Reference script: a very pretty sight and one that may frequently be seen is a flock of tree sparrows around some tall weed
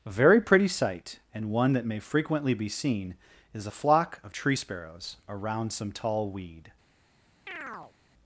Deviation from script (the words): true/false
false